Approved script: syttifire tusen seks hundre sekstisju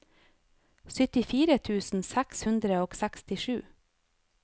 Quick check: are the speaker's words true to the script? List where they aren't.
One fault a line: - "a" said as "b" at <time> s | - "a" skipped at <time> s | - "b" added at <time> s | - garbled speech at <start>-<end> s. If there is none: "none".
- "og" added at 2.9 s